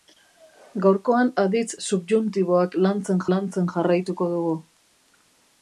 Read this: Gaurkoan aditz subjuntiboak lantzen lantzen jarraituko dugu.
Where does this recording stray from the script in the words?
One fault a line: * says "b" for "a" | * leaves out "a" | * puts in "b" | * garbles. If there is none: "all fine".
all fine